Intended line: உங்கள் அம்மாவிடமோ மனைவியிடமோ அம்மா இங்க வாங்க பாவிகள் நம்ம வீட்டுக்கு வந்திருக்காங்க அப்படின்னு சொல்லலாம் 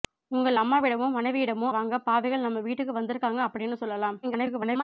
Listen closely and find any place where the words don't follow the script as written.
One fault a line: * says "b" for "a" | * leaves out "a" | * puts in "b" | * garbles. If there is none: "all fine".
* leaves out "அம்மா இங்க"
* garbles